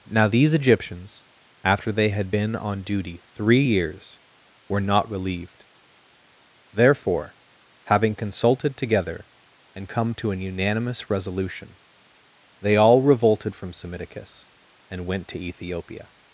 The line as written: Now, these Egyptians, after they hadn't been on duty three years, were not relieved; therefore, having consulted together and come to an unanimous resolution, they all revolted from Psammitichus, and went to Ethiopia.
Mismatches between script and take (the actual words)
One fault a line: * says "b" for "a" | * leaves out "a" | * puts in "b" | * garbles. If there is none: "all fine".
* says "had" for "hadn't"